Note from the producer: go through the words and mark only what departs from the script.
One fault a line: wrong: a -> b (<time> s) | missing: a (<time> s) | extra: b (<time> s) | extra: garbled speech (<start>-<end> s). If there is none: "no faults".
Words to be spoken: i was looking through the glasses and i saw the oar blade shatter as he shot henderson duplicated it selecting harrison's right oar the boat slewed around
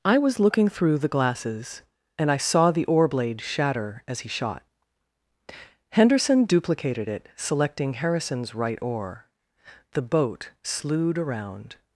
no faults